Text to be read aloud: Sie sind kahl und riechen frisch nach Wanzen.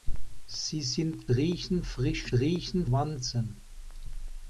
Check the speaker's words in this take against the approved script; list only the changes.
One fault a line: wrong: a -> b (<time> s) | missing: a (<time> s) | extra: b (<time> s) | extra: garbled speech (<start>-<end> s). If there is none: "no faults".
missing: kahl und (1.3 s)
wrong: nach -> riechen (2.3 s)